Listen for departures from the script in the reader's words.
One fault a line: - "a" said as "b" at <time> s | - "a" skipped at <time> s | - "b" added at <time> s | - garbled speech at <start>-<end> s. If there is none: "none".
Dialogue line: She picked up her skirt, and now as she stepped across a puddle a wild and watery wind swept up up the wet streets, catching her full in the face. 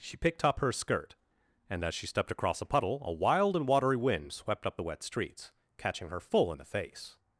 - "now" skipped at 1.8 s
- "up" skipped at 4.8 s